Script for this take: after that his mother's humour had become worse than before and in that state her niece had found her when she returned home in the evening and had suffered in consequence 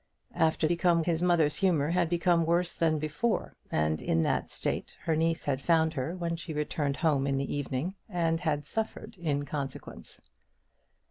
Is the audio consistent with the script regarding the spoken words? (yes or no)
no